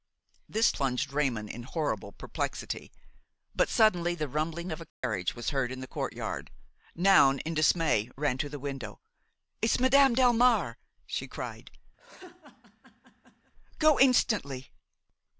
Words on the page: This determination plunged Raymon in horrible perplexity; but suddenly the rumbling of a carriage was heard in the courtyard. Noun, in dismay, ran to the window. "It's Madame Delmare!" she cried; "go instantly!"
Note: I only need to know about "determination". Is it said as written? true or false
false